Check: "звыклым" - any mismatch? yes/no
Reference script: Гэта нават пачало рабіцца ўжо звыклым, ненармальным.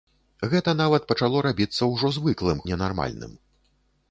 no